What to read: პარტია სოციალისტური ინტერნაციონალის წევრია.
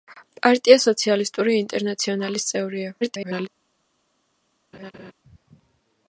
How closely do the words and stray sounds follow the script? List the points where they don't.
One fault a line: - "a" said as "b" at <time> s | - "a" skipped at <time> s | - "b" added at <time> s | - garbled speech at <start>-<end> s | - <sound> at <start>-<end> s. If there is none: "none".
- garbled speech at 3.0-3.5 s
- laugh at 4.7-5.1 s